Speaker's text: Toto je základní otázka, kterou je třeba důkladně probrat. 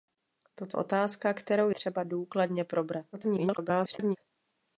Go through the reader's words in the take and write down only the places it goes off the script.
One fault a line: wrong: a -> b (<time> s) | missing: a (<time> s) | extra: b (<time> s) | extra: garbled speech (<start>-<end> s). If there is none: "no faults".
missing: je základní (0.8 s)
missing: je (1.7 s)
extra: garbled speech (3.1-4.2 s)